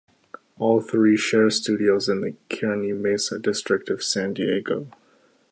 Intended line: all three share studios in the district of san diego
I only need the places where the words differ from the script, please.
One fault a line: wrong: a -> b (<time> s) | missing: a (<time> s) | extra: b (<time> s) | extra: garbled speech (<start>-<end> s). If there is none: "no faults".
extra: kearny mesa (2.5 s)